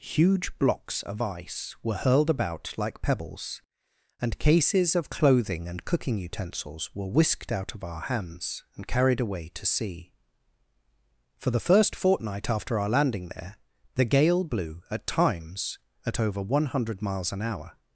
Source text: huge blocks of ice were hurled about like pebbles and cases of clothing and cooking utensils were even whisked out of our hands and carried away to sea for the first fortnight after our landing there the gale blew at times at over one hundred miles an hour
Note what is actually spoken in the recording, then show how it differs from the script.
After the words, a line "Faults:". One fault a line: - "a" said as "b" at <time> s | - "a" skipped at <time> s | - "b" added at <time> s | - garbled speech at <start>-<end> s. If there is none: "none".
huge blocks of ice were hurled about like pebbles and cases of clothing and cooking utensils were whisked out of our hands and carried away to sea for the first fortnight after our landing there the gale blew at times at over one hundred miles an hour
Faults:
- "even" skipped at 7.1 s